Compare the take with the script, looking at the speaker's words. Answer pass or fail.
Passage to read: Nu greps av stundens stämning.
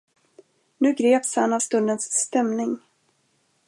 fail